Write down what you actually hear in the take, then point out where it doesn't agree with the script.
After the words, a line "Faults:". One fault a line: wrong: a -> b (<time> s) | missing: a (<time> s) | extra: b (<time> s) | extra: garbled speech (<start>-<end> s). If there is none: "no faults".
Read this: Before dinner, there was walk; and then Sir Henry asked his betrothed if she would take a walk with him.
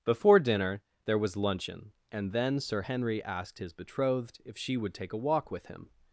Before dinner, there was luncheon; and then Sir Henry asked his betrothed if she would take a walk with him.
Faults:
wrong: walk -> luncheon (1.4 s)